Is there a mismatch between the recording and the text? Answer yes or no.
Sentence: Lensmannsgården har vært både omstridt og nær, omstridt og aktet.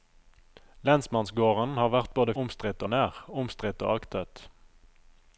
no